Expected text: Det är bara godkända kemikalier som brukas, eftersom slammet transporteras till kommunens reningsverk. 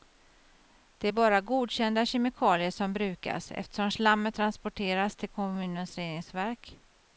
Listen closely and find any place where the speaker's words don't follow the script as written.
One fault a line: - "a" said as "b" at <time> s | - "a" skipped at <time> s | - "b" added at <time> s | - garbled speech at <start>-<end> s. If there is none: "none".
none